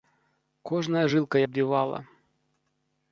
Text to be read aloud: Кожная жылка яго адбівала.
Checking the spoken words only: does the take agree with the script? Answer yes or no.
no